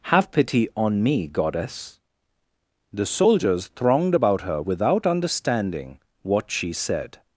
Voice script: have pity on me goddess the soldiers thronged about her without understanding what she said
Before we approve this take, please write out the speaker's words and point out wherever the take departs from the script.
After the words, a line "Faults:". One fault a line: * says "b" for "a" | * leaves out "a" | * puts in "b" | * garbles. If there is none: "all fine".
have pity on me goddess the soldiers thronged about her without understanding what she said
Faults:
all fine